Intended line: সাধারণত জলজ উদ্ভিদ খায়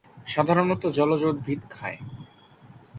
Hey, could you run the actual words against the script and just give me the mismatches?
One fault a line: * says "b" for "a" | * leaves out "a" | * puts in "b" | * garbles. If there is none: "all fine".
all fine